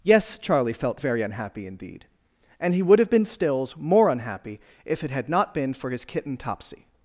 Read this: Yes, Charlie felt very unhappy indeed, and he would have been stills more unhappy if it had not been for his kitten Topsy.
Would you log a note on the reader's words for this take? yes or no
no